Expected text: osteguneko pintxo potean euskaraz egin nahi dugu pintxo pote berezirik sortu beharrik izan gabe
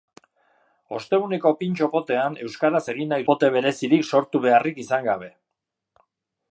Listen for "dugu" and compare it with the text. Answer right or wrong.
wrong